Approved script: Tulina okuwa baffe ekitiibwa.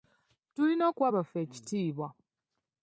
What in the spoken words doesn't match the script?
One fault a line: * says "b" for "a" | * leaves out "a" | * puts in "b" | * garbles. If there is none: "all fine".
all fine